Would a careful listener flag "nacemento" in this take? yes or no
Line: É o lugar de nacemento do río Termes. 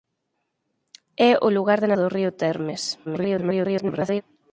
yes